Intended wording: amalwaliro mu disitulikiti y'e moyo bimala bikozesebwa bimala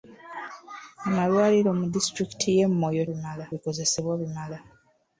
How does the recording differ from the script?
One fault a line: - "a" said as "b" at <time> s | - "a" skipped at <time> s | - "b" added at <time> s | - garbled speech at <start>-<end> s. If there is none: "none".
none